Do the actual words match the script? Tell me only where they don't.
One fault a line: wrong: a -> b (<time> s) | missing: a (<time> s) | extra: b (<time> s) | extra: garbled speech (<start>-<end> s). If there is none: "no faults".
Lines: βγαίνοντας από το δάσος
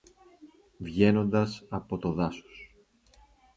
no faults